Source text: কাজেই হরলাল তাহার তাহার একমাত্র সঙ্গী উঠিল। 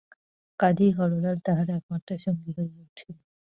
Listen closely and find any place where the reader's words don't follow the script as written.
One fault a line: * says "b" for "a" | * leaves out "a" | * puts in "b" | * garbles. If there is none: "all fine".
* leaves out "তাহার"
* puts in "হইয়া"